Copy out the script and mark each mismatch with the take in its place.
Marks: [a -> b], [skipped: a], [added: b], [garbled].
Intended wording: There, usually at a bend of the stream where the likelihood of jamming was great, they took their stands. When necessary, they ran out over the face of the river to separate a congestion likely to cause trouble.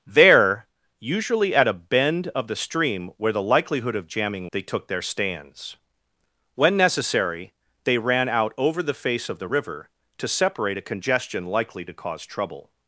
There, usually at a bend of the stream where the likelihood of jamming [skipped: was great,] they took their stands. When necessary, they ran out over the face of the river to separate a congestion likely to cause trouble.